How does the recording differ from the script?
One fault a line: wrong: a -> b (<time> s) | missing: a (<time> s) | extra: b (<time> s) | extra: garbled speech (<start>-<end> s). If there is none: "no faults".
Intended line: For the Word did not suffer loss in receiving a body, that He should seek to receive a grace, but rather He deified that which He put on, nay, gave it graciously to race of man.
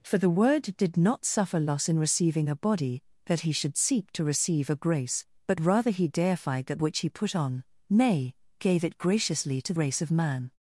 no faults